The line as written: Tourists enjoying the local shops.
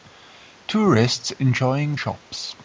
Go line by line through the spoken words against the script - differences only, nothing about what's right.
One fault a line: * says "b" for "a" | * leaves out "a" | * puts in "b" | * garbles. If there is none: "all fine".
* leaves out "the local"